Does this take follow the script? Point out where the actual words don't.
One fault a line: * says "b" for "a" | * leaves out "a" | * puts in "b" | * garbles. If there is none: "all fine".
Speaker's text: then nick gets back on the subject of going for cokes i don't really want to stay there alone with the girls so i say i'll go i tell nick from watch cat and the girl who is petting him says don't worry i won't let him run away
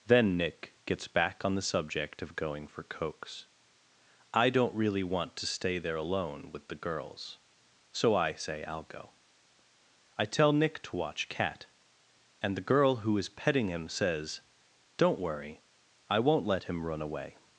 * says "to" for "from"